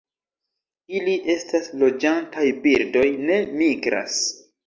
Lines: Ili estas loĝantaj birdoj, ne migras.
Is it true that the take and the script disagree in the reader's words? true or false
false